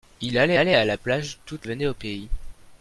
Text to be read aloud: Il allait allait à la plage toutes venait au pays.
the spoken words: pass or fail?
pass